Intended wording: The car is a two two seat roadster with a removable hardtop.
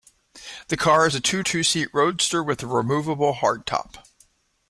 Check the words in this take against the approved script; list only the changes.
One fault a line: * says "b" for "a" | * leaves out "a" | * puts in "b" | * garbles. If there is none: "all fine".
all fine